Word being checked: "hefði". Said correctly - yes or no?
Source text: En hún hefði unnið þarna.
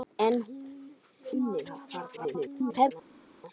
no